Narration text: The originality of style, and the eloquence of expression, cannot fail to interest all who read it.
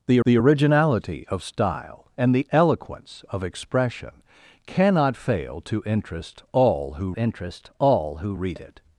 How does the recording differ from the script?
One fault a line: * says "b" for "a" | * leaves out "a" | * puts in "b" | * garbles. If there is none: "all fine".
* puts in "the"
* puts in "interest all who"